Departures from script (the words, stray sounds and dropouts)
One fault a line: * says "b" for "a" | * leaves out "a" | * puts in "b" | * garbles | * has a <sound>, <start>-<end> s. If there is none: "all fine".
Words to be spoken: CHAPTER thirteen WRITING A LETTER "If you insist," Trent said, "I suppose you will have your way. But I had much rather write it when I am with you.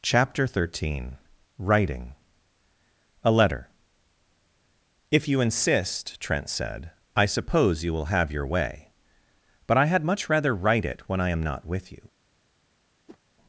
* puts in "not"
* has a whoosh, 13.1-13.2 s